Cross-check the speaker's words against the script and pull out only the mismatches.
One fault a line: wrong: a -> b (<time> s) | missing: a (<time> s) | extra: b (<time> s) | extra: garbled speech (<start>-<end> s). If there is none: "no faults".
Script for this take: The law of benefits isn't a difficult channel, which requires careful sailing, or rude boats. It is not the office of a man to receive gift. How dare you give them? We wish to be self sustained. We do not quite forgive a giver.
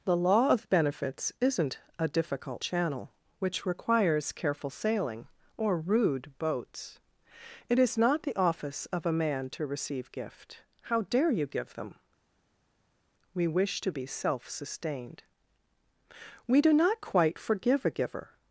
no faults